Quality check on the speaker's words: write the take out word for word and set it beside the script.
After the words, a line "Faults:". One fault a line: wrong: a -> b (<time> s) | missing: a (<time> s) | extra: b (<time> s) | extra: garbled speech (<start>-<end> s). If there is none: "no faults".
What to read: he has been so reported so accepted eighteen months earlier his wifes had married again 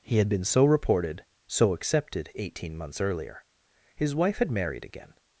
he had been so reported so accepted eighteen months earlier his wife had married again
Faults:
wrong: has -> had (0.2 s)
wrong: wifes -> wife (4.2 s)